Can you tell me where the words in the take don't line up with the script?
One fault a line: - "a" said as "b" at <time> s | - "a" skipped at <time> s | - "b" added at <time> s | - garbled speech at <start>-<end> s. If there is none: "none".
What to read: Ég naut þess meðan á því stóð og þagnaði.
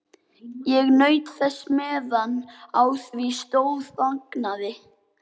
- "og" skipped at 3.9 s